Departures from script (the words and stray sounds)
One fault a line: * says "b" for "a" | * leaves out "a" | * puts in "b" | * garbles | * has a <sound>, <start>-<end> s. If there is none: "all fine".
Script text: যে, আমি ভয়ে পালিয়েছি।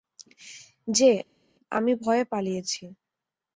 all fine